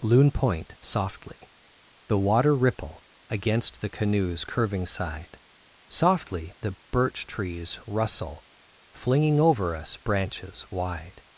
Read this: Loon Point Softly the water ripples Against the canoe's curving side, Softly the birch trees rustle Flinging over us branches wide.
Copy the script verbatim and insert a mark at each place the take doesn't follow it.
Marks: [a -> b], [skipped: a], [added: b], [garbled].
Loon Point Softly the water [ripples -> ripple] Against the canoe's curving side, Softly the birch trees rustle Flinging over us branches wide.